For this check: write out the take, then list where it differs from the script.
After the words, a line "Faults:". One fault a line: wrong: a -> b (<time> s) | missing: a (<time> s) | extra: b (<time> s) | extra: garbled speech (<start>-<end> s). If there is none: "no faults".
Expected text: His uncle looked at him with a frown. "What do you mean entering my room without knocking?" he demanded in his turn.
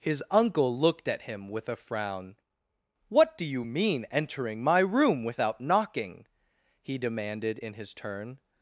His uncle looked at him with a frown. "What do you mean entering my room without knocking?" he demanded in his turn.
Faults:
no faults